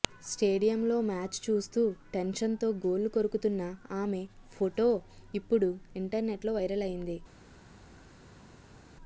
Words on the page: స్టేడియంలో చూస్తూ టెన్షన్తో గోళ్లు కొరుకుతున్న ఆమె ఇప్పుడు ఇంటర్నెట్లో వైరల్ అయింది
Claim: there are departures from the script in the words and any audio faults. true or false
true